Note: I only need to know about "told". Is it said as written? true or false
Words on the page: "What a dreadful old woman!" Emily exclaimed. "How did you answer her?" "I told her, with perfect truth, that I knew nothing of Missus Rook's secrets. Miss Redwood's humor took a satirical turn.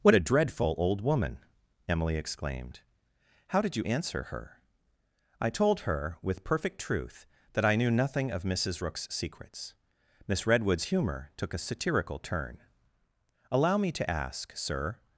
true